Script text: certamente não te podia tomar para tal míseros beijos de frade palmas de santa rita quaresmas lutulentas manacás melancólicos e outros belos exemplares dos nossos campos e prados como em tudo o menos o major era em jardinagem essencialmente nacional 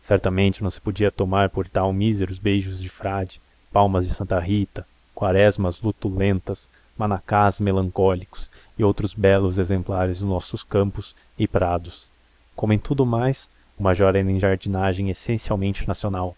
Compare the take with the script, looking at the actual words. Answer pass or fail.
fail